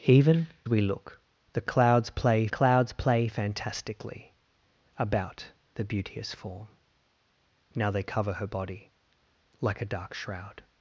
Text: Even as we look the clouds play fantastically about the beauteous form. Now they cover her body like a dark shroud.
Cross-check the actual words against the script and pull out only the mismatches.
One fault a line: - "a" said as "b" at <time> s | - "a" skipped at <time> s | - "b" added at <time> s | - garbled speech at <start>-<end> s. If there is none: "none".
- "as" skipped at 0.5 s
- "clouds play" added at 2.5 s